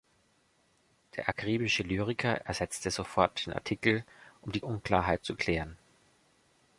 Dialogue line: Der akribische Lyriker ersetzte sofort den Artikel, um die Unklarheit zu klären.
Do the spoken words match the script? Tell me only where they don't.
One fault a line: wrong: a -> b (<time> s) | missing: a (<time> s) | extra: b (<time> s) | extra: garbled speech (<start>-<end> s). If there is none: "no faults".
no faults